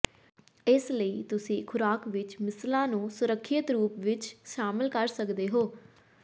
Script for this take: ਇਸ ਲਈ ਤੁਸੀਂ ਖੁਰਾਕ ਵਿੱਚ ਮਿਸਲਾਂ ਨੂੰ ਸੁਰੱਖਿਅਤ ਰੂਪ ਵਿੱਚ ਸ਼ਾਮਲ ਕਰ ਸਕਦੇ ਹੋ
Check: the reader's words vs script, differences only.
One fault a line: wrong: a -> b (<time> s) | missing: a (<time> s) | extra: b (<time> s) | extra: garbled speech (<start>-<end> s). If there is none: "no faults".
no faults